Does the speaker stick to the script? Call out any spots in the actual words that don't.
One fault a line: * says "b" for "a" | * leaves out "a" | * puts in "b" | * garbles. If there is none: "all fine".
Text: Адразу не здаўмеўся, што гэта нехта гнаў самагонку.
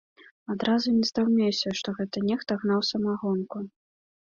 all fine